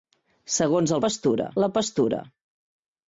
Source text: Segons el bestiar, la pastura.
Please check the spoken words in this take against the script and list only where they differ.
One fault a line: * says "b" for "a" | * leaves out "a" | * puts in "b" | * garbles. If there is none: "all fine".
* says "pastura" for "bestiar"